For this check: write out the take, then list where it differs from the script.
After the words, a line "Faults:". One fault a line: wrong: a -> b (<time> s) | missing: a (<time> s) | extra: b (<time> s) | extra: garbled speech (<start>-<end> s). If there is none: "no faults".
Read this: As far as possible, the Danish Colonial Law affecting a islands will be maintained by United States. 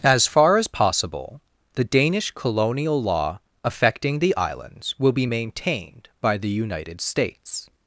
As far as possible, the Danish Colonial Law affecting the islands will be maintained by the United States.
Faults:
wrong: a -> the (4.2 s)
extra: the (6.4 s)